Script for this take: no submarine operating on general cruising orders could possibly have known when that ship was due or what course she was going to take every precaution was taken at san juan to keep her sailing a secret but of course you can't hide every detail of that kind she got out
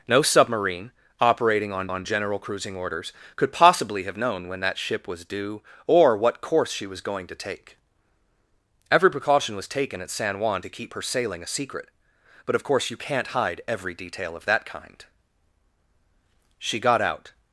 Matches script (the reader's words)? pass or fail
fail